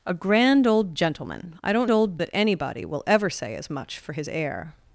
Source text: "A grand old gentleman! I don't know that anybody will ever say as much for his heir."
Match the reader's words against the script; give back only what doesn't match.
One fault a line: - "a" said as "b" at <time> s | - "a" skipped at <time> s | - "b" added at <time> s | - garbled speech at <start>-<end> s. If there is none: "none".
- "know" said as "old" at 1.9 s